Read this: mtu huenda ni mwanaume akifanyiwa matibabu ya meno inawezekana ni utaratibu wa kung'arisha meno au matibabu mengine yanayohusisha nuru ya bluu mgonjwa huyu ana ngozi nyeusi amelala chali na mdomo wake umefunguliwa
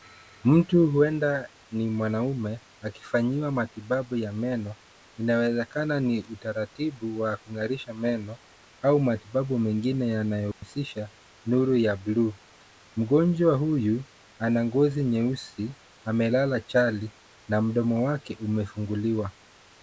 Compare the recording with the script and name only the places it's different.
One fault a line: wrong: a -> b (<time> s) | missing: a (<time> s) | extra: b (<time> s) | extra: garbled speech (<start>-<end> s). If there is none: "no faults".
no faults